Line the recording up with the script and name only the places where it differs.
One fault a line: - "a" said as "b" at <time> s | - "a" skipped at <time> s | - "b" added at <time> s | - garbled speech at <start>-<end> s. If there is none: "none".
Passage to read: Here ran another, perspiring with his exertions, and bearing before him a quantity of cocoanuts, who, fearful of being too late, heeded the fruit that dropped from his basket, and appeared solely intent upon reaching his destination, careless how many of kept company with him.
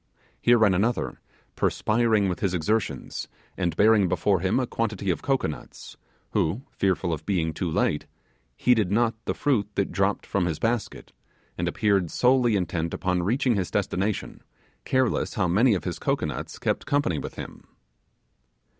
- "not" added at 8.9 s
- "his cocoanuts" added at 15.8 s